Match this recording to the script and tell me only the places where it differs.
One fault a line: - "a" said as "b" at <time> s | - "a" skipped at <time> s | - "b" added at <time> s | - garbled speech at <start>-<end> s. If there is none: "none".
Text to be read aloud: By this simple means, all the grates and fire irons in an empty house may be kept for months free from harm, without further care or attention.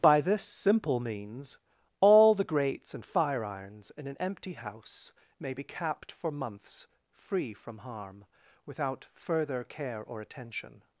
- "kept" said as "capped" at 5.6 s